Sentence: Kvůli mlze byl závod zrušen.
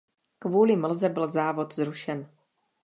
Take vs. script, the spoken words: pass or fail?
pass